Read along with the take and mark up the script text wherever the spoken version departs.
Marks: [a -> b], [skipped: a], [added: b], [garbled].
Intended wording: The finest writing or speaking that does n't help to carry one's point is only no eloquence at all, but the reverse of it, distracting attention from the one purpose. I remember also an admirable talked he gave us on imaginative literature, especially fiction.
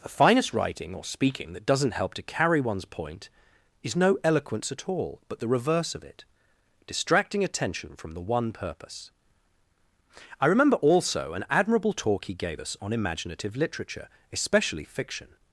The finest writing or speaking that does n't help to carry one's point is [skipped: only] no eloquence at all, but the reverse of it, distracting attention from the one purpose. I remember also an admirable [talked -> talk] he gave us on imaginative literature, especially fiction.